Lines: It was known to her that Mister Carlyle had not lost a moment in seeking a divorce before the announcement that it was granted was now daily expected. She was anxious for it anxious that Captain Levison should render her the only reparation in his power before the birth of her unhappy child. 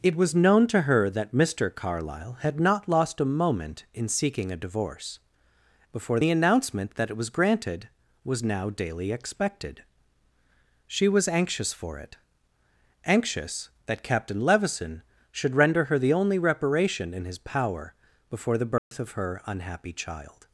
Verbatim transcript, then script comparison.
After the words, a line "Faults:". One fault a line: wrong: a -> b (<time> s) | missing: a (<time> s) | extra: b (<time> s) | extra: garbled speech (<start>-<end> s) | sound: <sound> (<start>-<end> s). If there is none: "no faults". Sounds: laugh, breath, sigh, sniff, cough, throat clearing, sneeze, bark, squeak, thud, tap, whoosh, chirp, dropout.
It was known to her that Mister Carlyle had not lost a moment in seeking a divorce before the announcement that it was granted was now daily expected. She was anxious for it anxious that Captain Levison should render her the only reparation in his power before the birth of her unhappy child.
Faults:
sound: dropout (18.8-18.9 s)